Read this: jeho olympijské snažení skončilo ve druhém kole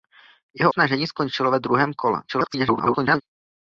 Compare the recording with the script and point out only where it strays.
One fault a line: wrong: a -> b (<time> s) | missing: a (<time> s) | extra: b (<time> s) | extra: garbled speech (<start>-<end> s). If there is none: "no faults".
missing: olympijské (0.7 s)
extra: garbled speech (2.3-3.2 s)